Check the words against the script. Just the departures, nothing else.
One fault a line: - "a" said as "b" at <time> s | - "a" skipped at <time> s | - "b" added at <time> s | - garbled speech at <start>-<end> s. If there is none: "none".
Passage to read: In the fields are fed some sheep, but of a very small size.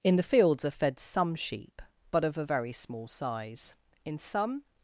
- "In some" added at 4.1 s